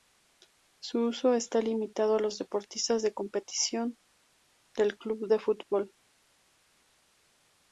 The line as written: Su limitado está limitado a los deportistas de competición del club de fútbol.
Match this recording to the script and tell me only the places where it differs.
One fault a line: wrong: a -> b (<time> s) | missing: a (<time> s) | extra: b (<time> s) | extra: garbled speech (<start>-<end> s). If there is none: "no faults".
wrong: limitado -> uso (1.1 s)